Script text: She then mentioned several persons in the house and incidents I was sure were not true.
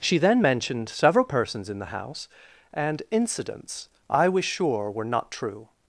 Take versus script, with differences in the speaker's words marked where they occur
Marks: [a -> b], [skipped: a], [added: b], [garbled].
She then mentioned several persons in the house and incidents I was sure were not true.